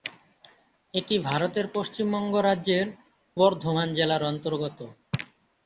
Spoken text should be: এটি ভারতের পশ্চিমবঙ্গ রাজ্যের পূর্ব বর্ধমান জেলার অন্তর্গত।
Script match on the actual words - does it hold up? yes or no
no